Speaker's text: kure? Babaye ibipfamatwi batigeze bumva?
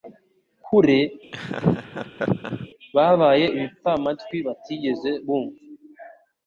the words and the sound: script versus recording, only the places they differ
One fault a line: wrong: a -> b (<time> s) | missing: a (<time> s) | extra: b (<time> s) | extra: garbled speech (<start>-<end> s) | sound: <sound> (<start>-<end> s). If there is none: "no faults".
sound: laugh (1.3-2.7 s)